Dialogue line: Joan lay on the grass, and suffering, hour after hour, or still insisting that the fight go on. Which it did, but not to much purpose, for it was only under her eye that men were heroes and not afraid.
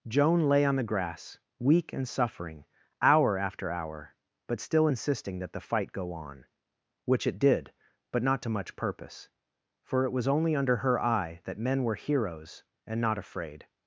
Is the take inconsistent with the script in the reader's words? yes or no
yes